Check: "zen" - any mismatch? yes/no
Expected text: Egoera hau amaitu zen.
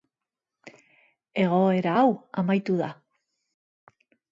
yes